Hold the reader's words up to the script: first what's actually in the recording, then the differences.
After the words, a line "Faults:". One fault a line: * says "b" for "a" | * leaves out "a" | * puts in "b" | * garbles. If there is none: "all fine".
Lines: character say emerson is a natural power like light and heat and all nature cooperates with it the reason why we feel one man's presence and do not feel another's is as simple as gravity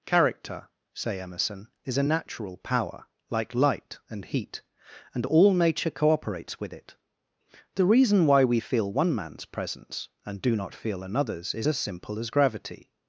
character say emerson is a natural power like light and heat and all nature cooperates with it the reason why we feel one man's presence and do not feel another's is as simple as gravity
Faults:
all fine